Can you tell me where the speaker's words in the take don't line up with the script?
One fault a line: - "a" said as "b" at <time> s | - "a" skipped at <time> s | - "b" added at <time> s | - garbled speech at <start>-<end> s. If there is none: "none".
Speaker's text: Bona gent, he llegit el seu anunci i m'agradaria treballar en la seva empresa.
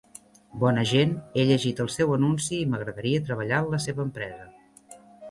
none